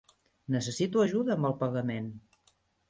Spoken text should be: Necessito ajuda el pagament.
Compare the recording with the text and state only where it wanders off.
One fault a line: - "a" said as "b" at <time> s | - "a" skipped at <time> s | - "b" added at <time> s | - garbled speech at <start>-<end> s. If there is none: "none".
- "amb" added at 1.4 s